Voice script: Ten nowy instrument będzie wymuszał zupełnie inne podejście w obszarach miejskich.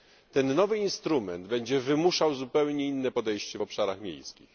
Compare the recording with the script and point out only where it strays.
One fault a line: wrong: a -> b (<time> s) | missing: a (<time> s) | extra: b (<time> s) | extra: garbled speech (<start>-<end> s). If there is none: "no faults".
no faults